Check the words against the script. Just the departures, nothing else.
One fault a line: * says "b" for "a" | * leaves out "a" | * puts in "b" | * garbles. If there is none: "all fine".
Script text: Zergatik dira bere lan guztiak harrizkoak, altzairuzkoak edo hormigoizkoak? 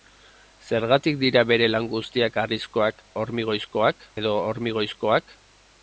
* says "hormigoizkoak" for "altzairuzkoak"